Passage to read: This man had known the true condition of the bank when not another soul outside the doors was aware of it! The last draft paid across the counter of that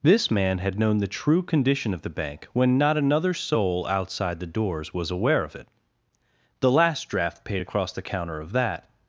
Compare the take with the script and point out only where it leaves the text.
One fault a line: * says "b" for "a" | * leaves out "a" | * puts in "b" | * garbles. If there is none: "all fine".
all fine